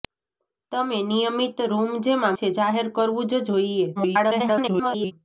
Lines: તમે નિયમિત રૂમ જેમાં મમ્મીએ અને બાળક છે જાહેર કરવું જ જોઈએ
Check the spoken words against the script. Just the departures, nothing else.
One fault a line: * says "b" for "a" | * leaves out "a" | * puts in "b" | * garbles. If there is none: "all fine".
* leaves out "મમ્મીએ અને બાળક"
* garbles